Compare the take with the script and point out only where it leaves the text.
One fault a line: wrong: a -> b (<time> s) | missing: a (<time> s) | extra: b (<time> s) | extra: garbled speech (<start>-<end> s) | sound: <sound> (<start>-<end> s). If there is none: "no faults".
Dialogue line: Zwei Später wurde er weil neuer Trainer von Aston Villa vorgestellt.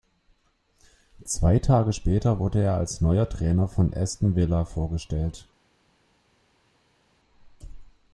extra: Tage (1.6 s)
wrong: weil -> als (2.8 s)